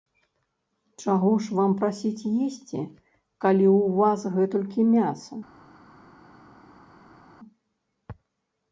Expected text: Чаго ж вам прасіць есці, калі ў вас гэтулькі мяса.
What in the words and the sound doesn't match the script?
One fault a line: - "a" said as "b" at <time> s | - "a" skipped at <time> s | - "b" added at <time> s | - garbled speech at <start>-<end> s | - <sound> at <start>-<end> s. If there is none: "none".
none